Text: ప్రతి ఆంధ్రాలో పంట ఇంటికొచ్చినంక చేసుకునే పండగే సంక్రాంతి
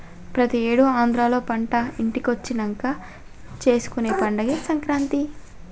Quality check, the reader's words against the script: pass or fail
fail